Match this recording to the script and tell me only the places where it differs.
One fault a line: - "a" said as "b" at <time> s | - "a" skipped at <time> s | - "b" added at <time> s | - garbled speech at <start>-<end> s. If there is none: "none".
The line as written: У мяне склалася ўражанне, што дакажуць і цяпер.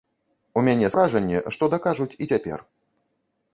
- "склалася" skipped at 0.9 s